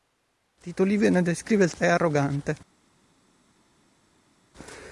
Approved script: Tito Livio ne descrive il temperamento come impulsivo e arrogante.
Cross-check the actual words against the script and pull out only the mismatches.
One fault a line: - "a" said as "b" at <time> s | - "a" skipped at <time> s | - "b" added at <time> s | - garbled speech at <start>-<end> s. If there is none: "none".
- "temperamento come impulsivo" skipped at 1.7 s